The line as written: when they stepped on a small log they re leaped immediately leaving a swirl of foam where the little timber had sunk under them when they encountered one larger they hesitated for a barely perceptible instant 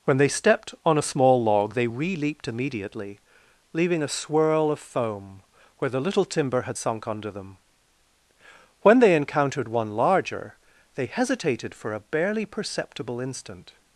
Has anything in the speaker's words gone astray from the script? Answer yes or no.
no